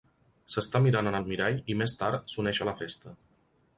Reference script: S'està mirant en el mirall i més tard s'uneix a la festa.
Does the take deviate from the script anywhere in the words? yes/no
no